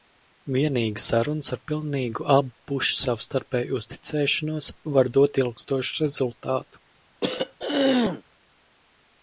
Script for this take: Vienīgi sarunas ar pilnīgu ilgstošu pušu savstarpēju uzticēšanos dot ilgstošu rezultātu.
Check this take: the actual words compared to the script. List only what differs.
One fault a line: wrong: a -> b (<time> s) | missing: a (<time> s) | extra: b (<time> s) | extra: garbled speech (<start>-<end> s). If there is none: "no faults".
wrong: ilgstošu -> abu (2.3 s)
extra: var (5.0 s)